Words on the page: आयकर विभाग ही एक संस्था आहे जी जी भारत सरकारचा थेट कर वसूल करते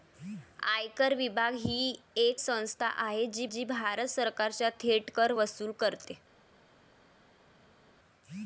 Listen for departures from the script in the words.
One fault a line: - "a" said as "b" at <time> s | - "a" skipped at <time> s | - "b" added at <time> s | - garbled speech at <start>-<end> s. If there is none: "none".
none